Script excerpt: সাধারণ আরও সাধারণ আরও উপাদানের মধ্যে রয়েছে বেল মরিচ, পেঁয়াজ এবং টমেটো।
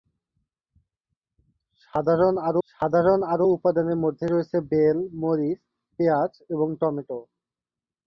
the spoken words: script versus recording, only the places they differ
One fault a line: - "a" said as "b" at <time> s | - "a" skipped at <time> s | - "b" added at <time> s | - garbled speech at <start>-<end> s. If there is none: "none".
none